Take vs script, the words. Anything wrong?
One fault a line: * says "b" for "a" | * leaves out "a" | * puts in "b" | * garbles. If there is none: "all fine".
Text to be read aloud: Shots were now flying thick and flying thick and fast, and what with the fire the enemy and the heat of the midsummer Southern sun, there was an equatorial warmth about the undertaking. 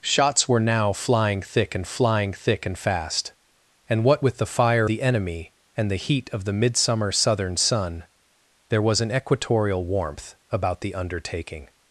all fine